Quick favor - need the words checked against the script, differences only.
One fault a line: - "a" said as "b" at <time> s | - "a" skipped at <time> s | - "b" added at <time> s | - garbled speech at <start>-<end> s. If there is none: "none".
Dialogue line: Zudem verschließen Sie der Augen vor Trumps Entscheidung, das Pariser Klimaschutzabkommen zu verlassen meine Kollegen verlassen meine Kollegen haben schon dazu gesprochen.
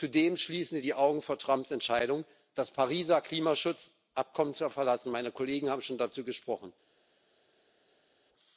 - "der" said as "die" at 0.8 s
- "verlassen meine Kollegen" skipped at 5.7 s